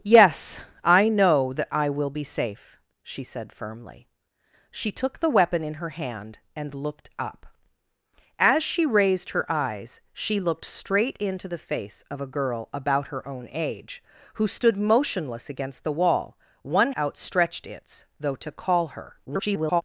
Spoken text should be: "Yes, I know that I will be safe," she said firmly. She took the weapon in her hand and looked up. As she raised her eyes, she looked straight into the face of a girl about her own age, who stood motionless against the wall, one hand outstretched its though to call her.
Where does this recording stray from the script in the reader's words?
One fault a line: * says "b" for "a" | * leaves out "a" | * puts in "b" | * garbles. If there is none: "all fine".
* leaves out "hand"
* garbles